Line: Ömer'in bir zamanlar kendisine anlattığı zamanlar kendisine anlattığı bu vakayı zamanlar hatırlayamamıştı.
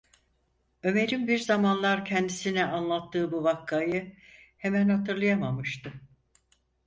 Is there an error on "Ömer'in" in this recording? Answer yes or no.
no